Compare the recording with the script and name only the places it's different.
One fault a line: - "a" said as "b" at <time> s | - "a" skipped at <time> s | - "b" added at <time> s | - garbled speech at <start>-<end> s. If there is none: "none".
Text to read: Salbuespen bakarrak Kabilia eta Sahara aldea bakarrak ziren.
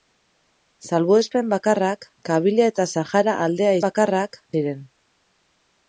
none